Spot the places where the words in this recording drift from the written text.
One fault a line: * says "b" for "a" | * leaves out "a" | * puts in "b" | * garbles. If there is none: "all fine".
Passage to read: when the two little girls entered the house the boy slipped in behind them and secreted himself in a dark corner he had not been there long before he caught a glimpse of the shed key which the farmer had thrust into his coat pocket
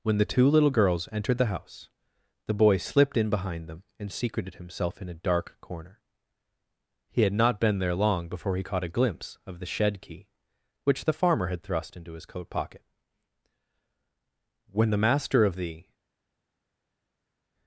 * puts in "when the master of the"